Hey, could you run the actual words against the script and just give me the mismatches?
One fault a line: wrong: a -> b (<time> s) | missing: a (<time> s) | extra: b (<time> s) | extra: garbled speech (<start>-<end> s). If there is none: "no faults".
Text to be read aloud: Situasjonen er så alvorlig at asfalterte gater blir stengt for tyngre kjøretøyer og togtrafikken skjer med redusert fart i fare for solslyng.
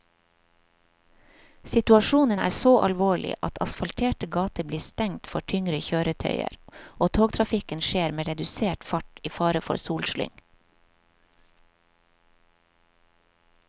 no faults